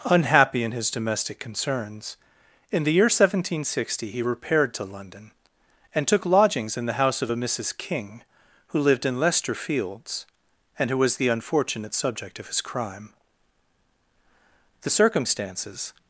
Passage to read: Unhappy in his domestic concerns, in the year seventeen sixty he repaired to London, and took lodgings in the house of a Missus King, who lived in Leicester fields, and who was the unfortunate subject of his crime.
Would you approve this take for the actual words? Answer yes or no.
no